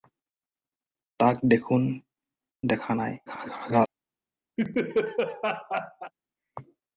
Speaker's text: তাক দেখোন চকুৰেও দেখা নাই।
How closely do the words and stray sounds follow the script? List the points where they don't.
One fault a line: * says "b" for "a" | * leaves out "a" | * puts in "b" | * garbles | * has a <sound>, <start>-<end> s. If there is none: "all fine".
* leaves out "চকুৰেও"
* garbles
* has a laugh, 4.6-6.1 s